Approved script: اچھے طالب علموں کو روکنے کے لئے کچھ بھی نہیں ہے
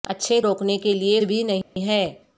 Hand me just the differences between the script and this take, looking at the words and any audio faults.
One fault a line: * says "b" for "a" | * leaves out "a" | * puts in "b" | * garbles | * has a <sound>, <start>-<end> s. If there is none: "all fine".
* leaves out "طالب علموں کو"
* leaves out "کچھ"
* has a dropout, 1.6-1.8 s